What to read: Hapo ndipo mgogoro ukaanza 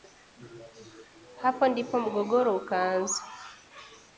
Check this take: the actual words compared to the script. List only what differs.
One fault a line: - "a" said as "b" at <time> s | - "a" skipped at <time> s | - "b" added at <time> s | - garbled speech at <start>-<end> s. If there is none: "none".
none